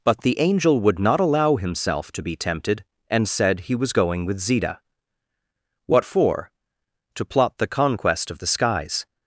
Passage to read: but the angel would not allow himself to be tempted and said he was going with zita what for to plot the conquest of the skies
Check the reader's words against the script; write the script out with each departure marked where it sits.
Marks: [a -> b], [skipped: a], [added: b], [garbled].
but the angel would not allow himself to be tempted and said he was going with zita what for to plot the conquest of the skies